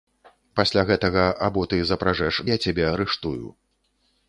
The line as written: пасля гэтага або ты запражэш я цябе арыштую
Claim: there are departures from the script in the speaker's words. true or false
false